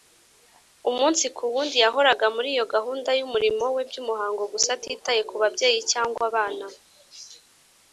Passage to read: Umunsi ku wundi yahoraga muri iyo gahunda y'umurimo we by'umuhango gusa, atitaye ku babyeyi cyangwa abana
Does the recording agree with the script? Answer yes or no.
yes